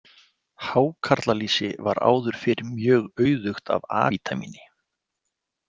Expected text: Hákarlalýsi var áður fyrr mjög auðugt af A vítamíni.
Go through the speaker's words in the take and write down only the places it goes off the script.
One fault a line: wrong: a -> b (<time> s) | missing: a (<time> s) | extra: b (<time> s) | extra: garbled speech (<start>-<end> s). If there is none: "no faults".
no faults